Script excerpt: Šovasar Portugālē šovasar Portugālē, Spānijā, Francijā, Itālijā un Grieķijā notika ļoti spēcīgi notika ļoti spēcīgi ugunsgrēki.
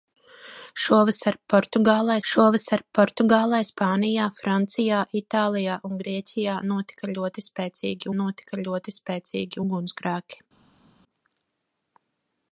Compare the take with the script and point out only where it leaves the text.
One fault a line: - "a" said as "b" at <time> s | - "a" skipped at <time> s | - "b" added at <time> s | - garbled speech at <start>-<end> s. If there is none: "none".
none